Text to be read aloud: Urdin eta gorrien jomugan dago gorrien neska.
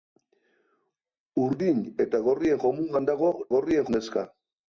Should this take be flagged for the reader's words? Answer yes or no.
no